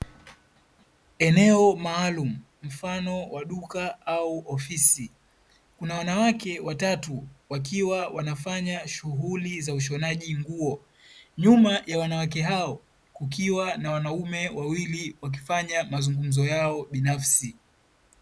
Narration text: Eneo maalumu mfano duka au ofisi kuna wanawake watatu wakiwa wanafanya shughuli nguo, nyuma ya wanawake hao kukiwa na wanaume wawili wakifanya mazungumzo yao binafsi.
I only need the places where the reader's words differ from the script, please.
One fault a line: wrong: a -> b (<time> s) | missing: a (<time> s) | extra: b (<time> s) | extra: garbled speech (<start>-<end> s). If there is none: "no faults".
extra: wa (3.3 s)
extra: za ushonaji (9.6 s)